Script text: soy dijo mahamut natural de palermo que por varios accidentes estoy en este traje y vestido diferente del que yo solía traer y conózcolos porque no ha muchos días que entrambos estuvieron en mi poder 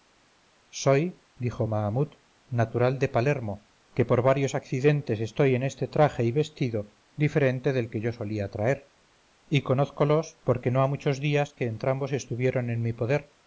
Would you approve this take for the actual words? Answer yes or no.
yes